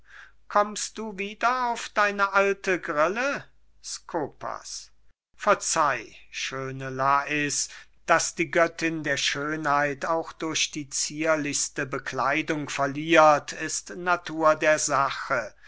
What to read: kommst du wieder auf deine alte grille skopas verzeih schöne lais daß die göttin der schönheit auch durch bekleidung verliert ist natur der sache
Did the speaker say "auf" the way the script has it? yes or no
yes